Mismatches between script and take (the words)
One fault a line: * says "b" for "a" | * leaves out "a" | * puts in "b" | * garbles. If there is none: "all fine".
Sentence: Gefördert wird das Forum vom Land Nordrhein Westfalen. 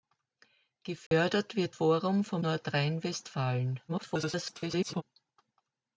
* leaves out "das"
* leaves out "Land"
* garbles